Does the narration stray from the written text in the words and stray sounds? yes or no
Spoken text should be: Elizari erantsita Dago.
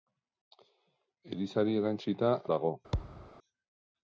yes